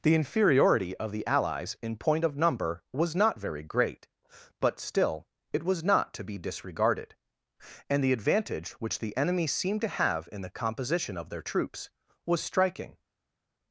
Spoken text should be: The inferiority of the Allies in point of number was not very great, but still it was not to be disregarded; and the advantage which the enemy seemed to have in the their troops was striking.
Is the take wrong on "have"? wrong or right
right